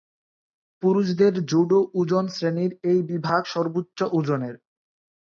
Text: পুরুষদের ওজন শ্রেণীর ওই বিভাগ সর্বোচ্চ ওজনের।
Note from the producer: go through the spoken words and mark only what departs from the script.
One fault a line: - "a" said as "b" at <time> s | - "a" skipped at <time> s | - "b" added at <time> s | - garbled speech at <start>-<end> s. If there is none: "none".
- "জুডো" added at 1.5 s
- "ওই" said as "এই" at 2.8 s